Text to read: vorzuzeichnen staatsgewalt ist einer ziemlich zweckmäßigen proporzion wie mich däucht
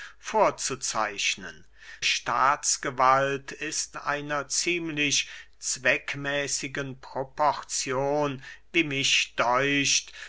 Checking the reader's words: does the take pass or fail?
pass